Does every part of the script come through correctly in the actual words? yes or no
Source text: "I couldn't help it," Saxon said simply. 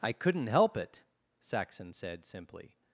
yes